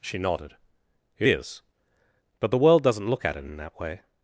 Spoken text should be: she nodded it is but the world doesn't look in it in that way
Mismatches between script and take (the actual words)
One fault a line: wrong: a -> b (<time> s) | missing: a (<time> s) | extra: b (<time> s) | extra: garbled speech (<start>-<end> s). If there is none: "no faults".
wrong: in -> at (3.2 s)